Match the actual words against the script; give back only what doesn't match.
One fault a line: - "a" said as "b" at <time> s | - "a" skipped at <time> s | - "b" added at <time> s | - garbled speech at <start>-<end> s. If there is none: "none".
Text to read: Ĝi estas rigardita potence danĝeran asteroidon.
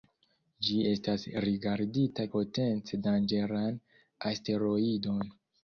none